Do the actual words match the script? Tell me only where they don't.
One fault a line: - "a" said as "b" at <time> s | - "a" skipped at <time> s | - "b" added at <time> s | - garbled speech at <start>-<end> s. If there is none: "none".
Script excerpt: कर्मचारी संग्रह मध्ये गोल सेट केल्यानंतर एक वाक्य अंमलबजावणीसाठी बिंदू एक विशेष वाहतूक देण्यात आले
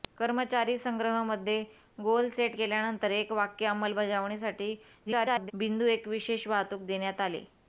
- garbled speech at 5.1-5.5 s